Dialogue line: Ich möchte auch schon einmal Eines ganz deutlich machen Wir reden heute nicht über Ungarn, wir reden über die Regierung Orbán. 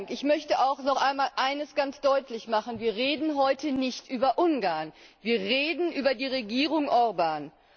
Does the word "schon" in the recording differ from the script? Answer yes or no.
yes